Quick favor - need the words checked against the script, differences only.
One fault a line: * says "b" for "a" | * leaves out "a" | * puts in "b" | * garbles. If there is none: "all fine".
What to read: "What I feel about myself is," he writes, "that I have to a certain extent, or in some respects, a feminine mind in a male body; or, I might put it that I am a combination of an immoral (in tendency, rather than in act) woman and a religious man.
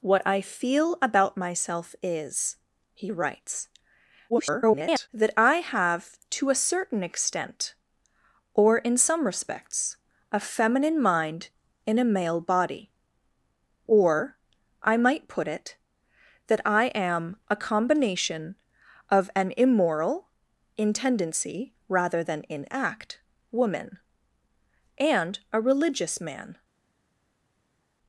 * garbles